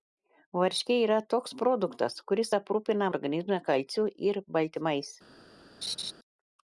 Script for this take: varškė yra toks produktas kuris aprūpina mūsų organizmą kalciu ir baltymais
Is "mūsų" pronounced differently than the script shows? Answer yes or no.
yes